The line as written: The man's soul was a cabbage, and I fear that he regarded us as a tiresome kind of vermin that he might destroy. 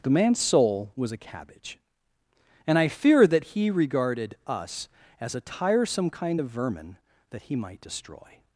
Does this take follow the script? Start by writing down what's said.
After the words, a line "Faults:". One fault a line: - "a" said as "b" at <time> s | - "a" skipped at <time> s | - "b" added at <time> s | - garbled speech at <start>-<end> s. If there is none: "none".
The man's soul was a cabbage, and I fear that he regarded us as a tiresome kind of vermin that he might destroy.
Faults:
none